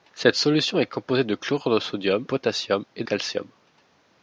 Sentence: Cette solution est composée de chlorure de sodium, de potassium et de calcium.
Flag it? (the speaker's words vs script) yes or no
yes